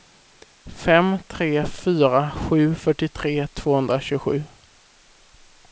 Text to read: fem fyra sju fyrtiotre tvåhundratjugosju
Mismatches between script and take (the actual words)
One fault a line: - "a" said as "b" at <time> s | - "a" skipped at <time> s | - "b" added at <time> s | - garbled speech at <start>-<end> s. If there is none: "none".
- "tre" added at 1.3 s